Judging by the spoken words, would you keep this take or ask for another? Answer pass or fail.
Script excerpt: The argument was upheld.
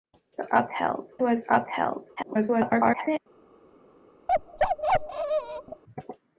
fail